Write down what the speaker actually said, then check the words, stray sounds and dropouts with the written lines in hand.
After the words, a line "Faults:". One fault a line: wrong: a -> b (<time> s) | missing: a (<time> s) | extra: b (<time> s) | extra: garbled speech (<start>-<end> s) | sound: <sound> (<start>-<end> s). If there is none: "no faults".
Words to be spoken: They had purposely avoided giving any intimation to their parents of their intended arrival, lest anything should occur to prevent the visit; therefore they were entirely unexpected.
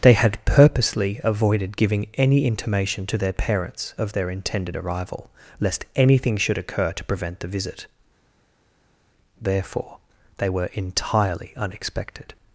They had purposely avoided giving any intimation to their parents of their intended arrival, lest anything should occur to prevent the visit; therefore they were entirely unexpected.
Faults:
no faults